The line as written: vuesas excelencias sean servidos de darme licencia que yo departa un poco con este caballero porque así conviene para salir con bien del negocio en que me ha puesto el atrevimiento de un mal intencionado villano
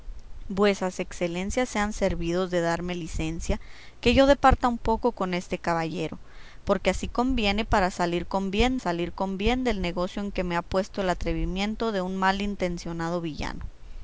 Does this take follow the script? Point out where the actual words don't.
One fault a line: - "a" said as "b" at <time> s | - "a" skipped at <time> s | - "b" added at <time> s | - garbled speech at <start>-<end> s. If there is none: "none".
- "salir con bien" added at 8.8 s